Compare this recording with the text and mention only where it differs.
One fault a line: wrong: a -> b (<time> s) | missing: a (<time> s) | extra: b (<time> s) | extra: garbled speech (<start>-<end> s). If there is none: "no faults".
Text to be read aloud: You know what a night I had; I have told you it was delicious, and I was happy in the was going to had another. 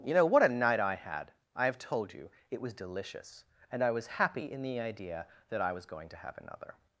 extra: idea that I (4.8 s)
wrong: had -> have (6.2 s)